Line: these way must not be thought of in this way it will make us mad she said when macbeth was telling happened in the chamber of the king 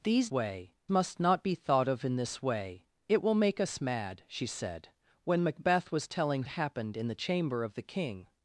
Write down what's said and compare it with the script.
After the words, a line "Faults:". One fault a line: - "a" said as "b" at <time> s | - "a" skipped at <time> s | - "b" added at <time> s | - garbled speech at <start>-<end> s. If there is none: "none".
these way must not be thought of in this way it will make us mad she said when macbeth was telling happened in the chamber of the king
Faults:
none